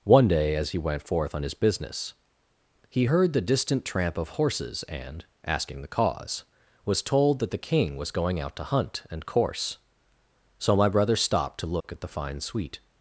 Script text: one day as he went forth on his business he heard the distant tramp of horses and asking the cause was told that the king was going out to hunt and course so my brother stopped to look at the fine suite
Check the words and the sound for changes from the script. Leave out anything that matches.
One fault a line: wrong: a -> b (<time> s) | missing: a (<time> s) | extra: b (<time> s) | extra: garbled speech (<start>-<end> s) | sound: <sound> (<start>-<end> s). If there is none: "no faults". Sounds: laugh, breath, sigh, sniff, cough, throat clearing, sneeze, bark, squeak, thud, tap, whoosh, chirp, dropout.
sound: dropout (11.8-11.8 s)